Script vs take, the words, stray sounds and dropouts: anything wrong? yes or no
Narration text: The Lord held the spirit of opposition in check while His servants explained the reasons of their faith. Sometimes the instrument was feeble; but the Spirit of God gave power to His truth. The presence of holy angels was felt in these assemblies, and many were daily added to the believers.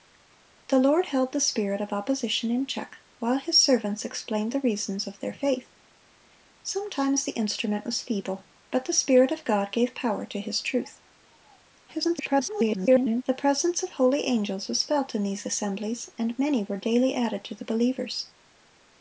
yes